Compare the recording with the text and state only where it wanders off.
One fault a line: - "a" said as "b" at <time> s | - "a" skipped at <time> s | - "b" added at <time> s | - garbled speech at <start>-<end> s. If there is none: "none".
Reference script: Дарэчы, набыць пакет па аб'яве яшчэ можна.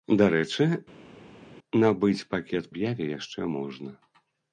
- "па" skipped at 2.7 s